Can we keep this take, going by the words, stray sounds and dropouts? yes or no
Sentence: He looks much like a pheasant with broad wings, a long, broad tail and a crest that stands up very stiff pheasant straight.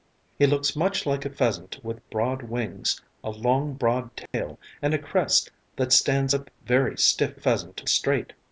no